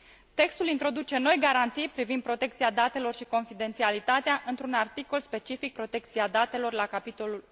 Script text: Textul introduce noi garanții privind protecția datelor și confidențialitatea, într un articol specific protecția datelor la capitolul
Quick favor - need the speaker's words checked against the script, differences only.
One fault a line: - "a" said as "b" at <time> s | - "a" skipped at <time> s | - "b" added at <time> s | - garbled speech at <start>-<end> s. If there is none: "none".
none